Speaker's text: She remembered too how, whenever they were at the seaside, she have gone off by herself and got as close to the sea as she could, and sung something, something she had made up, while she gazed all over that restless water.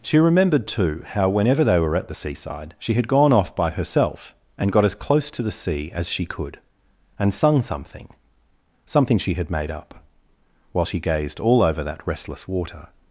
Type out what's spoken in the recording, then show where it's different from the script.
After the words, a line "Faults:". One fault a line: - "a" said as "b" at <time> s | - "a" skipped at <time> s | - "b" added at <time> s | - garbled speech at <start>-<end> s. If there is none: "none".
She remembered too how, whenever they were at the seaside, she had gone off by herself and got as close to the sea as she could, and sung something, something she had made up, while she gazed all over that restless water.
Faults:
- "have" said as "had" at 2.9 s